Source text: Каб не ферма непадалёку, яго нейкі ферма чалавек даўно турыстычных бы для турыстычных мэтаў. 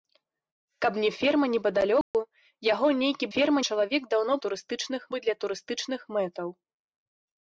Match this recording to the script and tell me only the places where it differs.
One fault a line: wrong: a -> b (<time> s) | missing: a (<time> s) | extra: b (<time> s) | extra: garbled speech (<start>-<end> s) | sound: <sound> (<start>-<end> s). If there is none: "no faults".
sound: dropout (2.0-2.1 s)